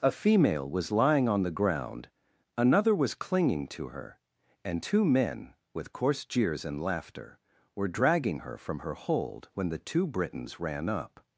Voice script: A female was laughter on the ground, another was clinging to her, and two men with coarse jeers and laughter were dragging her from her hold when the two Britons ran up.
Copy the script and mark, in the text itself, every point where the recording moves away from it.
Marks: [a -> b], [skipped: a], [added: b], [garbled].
A female was [laughter -> lying] on the ground, another was clinging to her, and two men with coarse jeers and laughter were dragging her from her hold when the two Britons ran up.